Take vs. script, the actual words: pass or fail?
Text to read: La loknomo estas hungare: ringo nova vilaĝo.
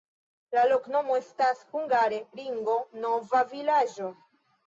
pass